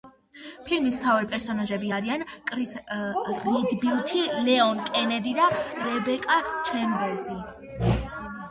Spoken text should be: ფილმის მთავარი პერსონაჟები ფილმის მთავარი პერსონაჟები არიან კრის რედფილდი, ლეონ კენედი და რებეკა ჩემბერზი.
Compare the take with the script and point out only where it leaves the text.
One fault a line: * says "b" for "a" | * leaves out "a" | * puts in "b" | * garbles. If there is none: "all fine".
* leaves out "ფილმის მთავარი პერსონაჟები"